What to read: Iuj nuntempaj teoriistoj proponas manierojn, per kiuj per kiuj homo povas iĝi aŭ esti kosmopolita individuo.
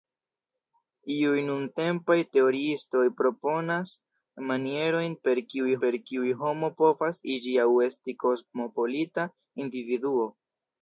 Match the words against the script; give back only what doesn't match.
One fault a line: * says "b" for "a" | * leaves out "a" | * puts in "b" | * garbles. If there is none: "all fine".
all fine